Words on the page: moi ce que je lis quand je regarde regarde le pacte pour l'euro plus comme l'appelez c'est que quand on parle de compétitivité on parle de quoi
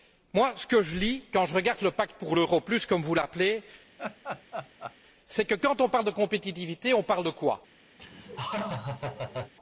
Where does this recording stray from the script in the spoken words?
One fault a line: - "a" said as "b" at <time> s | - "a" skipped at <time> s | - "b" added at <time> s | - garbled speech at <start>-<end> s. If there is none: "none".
- "regarde" skipped at 1.8 s
- "vous" added at 3.0 s